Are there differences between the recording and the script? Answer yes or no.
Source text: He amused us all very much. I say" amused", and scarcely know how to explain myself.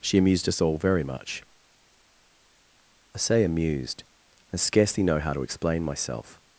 yes